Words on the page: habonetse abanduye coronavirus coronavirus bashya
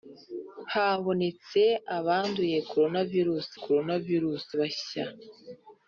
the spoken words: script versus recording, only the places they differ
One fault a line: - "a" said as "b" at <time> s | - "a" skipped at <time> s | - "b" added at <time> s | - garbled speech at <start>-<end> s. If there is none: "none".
none